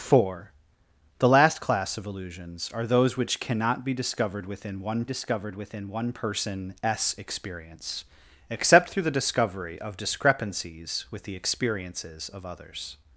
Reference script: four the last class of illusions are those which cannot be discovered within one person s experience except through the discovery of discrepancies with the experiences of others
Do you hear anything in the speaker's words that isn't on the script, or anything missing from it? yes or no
yes